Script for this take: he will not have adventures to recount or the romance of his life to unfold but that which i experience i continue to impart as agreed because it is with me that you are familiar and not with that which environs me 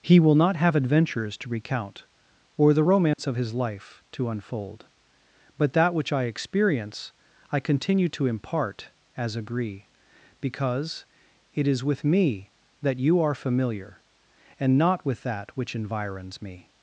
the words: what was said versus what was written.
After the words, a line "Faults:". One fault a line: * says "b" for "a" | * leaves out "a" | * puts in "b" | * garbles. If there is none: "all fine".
he will not have adventures to recount or the romance of his life to unfold but that which i experience i continue to impart as agree because it is with me that you are familiar and not with that which environs me
Faults:
* says "agree" for "agreed"